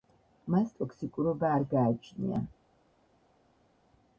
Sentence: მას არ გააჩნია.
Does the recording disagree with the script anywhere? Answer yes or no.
yes